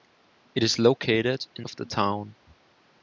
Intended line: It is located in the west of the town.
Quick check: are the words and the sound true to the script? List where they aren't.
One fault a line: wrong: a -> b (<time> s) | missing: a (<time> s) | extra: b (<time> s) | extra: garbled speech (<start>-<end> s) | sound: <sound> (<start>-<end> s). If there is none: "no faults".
missing: the west (1.6 s)